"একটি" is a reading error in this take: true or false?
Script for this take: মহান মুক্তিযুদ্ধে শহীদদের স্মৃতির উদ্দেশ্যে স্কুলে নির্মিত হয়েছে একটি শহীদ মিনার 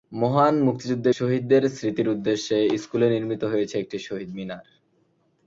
false